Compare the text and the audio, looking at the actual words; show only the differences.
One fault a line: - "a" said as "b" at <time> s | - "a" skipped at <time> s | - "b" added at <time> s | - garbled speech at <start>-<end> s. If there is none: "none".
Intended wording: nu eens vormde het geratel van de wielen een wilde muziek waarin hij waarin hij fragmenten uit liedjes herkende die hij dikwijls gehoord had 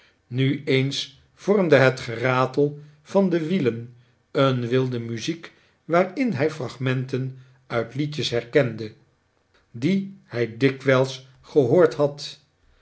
- "waarin hij" skipped at 6.5 s